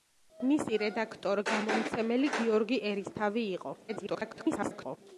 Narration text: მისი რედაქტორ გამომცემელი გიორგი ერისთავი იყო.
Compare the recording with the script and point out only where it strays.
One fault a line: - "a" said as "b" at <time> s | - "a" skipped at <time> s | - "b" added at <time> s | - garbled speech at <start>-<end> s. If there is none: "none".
- garbled speech at 3.9-5.0 s